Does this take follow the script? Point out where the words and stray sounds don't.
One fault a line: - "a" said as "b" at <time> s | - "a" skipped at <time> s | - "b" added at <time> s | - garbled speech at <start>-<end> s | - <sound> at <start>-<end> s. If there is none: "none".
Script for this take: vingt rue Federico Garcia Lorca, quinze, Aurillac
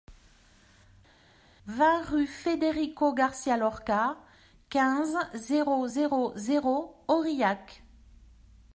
- "zéro zéro zéro" added at 5.3 s